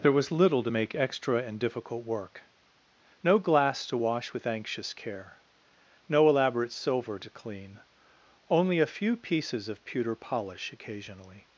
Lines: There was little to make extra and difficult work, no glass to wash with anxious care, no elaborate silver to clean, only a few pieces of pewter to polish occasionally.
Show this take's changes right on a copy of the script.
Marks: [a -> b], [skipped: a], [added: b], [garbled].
There was little to make extra and difficult work, no glass to wash with anxious care, no elaborate silver to clean, only a few pieces of pewter [skipped: to] polish occasionally.